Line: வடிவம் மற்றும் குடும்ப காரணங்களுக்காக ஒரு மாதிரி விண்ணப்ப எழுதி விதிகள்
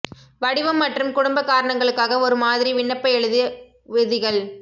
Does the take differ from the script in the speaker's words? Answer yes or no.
no